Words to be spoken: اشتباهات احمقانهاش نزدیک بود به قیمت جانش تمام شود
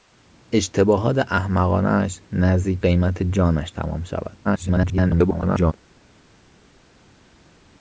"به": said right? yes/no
no